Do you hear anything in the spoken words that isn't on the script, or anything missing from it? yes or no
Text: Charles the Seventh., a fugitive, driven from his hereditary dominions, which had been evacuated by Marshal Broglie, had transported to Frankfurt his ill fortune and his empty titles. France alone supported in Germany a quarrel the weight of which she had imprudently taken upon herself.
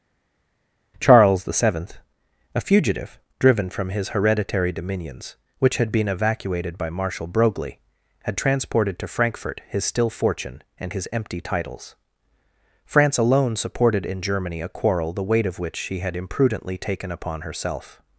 yes